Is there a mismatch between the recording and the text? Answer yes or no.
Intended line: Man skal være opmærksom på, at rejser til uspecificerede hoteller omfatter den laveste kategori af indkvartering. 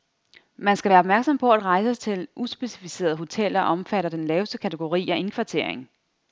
no